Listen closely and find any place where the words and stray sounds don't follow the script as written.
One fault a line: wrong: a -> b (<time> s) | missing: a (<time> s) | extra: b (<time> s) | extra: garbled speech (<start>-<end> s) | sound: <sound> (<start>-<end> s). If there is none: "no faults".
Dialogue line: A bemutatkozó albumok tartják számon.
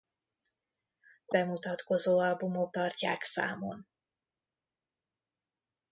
no faults